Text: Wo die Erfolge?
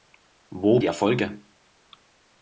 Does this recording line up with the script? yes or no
yes